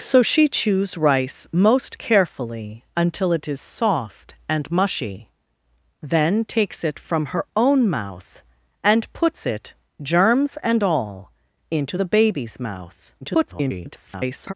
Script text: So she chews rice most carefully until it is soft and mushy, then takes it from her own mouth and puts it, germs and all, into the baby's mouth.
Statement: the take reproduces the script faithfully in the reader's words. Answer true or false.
false